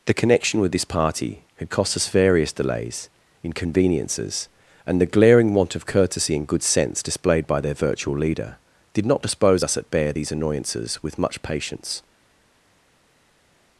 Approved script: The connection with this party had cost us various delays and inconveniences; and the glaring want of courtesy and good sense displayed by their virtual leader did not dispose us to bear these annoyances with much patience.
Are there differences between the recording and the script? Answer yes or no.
yes